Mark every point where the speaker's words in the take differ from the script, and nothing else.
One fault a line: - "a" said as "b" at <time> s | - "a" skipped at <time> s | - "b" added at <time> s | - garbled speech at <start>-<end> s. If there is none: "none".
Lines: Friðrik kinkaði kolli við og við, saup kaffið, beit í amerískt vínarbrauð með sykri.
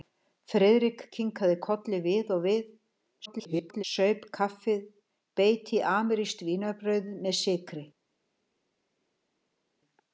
- garbled speech at 3.3-3.8 s